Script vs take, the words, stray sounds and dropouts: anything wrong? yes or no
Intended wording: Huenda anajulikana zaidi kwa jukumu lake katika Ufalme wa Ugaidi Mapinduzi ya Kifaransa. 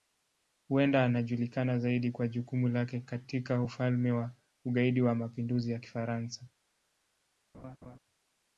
yes